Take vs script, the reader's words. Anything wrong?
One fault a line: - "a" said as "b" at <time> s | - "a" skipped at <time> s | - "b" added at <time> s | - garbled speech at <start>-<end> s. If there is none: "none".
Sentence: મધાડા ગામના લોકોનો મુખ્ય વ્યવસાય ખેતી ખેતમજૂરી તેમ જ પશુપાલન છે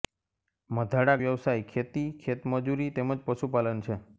- "ગામના લોકોનો મુખ્ય" skipped at 1.2 s